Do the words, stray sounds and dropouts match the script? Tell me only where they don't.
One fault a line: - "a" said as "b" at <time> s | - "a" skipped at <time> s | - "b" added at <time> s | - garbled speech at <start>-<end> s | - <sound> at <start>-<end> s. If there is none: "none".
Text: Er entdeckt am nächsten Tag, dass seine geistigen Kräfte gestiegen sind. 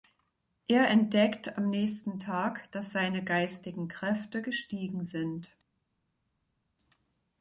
none